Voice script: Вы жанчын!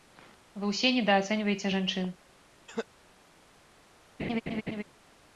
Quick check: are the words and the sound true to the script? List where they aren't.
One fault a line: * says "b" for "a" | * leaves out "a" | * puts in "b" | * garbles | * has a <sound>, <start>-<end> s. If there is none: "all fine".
* puts in "ўсе недаацэньваеце"
* has a cough, 2.7-2.9 s
* has a laugh, 4.2-4.8 s